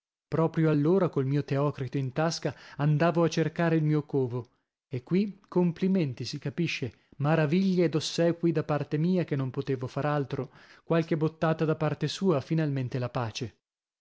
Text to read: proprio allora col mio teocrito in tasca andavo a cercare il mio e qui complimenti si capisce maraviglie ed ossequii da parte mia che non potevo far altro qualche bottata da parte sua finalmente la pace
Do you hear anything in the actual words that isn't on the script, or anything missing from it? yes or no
yes